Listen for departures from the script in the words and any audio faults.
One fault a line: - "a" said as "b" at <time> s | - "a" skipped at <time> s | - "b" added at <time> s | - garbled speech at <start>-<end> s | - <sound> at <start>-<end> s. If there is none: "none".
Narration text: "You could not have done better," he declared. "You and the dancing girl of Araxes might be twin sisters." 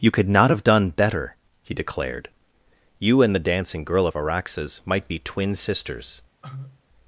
- cough at 6.4-6.8 s